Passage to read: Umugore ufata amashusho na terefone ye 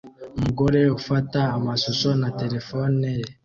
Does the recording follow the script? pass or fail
pass